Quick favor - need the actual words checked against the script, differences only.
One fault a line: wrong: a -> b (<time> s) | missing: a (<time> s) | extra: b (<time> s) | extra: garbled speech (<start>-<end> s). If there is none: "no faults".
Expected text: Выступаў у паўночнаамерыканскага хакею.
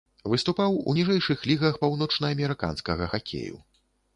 extra: ніжэйшых лігах (1.0 s)